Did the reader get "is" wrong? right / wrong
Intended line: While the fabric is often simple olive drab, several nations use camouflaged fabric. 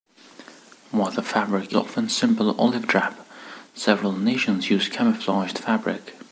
wrong